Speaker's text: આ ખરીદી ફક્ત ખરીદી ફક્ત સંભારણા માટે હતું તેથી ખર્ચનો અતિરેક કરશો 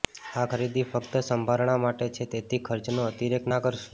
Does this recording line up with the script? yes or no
no